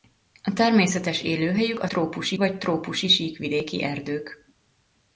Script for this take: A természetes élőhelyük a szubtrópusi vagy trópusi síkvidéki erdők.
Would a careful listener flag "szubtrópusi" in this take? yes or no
yes